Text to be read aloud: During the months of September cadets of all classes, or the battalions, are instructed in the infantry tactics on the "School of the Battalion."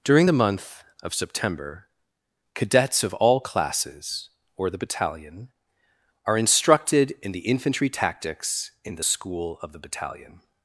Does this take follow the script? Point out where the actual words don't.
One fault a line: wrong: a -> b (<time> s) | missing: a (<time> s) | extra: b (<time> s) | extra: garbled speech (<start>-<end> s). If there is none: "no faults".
wrong: months -> month (0.3 s)
wrong: battalions -> battalion (4.8 s)
wrong: on -> in (8.8 s)